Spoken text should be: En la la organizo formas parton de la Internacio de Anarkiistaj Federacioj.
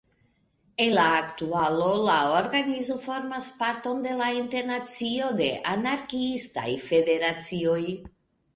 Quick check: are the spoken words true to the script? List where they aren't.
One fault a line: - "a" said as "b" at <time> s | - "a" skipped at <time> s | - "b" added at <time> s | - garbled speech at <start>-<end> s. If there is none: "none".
- "aktualo" added at 1.2 s